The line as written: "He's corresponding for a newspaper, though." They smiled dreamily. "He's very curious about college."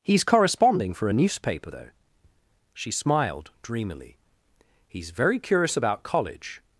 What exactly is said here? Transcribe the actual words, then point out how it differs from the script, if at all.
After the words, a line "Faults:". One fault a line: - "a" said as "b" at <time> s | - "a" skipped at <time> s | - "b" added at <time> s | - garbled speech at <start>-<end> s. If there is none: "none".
"He's corresponding for a newspaper, though." She smiled dreamily. "He's very curious about college."
Faults:
- "They" said as "She" at 2.7 s